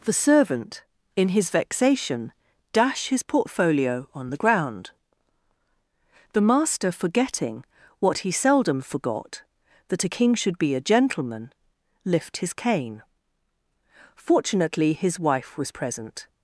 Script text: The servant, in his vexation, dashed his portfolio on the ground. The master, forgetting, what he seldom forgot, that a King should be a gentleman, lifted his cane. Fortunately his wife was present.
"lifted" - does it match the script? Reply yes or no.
no